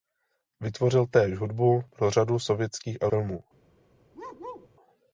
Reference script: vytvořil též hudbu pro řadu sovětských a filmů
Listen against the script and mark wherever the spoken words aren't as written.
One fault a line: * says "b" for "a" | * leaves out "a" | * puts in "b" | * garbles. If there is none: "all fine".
all fine